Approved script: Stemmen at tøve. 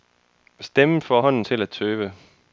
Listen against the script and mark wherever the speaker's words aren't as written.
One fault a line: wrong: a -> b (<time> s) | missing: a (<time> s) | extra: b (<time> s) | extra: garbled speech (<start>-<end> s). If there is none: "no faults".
extra: får hånden til (1.0 s)